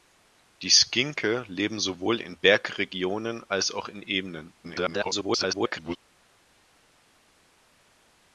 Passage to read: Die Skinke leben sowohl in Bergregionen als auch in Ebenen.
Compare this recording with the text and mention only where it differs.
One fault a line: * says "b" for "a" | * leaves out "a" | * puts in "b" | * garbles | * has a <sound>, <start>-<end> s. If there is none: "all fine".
* garbles